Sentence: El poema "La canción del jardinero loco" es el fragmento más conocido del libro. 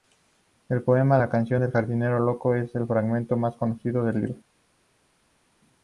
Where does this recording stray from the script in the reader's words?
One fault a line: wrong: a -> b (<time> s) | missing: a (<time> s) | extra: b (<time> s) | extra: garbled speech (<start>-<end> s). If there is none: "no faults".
no faults